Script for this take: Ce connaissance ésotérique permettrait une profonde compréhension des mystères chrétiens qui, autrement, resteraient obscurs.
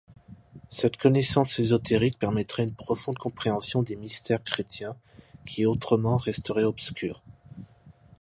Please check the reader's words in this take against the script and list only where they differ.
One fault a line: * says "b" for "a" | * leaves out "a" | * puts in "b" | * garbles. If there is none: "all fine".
* says "Cette" for "Ce"